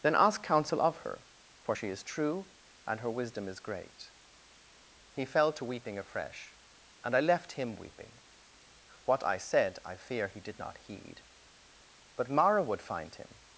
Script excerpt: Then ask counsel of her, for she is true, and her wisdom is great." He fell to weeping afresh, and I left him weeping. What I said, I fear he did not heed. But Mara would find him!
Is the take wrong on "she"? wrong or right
right